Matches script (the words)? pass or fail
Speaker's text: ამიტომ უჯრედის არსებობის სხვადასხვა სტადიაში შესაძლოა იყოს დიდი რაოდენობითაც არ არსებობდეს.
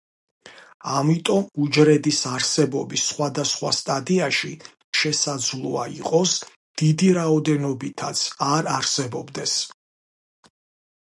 pass